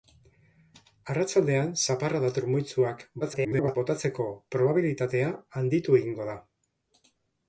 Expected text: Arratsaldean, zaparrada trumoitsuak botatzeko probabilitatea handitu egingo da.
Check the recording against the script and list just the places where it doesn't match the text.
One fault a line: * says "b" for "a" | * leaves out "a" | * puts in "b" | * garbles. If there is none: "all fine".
* garbles